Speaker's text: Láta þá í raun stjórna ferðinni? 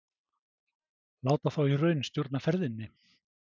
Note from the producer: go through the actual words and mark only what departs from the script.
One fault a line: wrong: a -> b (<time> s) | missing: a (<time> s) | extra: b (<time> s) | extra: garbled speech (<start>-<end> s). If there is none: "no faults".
no faults